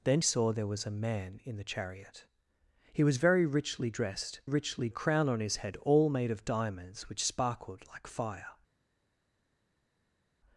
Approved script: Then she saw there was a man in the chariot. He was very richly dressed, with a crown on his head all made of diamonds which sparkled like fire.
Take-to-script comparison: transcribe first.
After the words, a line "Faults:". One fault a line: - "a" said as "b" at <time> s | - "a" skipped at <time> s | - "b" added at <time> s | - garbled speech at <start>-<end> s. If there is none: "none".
Then saw there was a man in the chariot. He was very richly dressed, richly a crown on his head all made of diamonds which sparkled like fire.
Faults:
- "she" skipped at 0.2 s
- "with" said as "richly" at 4.4 s